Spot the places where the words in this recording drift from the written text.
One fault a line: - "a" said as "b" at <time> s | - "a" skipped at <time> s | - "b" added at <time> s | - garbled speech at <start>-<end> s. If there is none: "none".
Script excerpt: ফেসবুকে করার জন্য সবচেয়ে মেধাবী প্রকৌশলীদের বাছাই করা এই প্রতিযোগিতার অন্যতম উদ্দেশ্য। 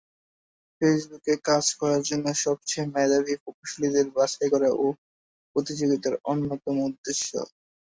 - "কাজ" added at 1.5 s